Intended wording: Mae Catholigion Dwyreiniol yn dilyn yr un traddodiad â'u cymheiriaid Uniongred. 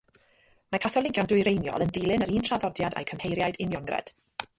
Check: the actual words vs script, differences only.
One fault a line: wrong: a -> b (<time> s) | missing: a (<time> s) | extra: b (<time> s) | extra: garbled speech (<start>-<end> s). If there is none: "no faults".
no faults